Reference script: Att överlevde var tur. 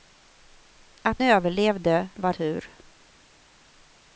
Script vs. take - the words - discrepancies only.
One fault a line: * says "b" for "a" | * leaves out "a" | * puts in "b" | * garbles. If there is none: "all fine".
all fine